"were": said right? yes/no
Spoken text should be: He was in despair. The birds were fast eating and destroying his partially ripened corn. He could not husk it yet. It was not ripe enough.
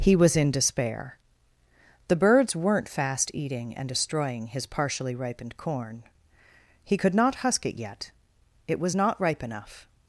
no